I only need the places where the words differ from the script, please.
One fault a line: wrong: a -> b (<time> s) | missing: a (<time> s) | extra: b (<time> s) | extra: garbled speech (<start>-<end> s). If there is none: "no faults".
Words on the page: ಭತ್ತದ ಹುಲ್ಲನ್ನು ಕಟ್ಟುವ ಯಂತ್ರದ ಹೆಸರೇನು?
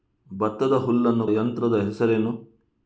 missing: ಕಟ್ಟುವ (1.3 s)